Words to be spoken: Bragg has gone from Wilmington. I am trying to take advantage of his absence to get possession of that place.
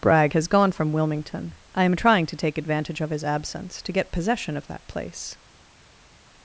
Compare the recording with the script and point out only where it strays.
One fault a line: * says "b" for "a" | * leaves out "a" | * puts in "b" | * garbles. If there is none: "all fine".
all fine